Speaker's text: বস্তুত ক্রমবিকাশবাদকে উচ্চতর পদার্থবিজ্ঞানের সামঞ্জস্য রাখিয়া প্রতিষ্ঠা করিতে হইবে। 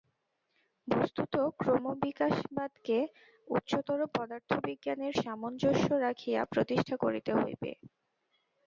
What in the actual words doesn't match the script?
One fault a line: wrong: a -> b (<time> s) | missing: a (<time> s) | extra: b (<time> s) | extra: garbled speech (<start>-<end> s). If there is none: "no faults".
no faults